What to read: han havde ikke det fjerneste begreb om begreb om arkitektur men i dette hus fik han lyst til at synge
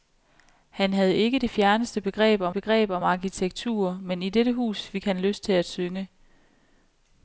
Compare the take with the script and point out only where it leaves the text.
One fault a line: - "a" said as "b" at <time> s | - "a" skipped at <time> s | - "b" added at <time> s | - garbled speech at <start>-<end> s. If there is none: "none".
none